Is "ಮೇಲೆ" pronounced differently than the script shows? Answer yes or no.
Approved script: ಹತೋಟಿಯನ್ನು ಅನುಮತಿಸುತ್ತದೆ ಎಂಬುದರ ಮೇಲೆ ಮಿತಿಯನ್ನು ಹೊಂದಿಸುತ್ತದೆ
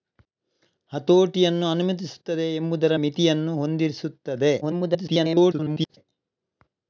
yes